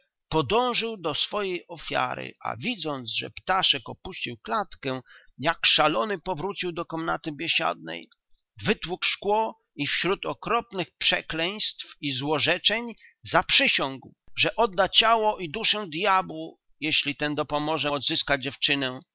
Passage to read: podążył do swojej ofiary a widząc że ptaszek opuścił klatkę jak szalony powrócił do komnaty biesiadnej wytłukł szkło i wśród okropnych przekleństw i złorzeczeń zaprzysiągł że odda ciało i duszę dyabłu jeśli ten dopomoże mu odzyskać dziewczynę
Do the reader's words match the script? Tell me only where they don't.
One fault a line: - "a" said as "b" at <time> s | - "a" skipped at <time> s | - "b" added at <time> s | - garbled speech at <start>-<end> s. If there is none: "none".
- "mu" skipped at 17.9 s